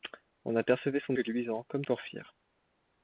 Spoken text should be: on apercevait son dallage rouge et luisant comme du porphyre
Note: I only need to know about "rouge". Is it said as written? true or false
false